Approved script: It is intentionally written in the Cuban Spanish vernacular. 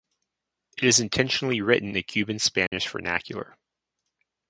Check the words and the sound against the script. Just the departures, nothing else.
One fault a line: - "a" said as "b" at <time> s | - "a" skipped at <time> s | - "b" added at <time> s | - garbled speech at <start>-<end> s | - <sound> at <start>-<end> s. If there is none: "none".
- "in" skipped at 1.9 s
- dropout at 2.7-2.7 s